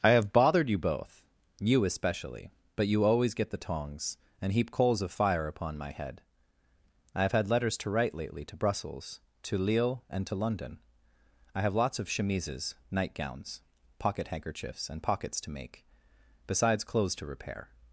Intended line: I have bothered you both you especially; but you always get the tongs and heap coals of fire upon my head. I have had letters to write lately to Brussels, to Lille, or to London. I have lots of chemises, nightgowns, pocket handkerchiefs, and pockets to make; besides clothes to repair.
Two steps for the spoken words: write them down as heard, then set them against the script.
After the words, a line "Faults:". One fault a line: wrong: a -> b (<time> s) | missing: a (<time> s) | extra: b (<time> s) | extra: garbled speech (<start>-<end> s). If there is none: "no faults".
I have bothered you both you especially; but you always get the tongs and heap coals of fire upon my head. I have had letters to write lately to Brussels, to Lille, and to London. I have lots of chemises, nightgowns, pocket handkerchiefs, and pockets to make; besides clothes to repair.
Faults:
wrong: or -> and (10.1 s)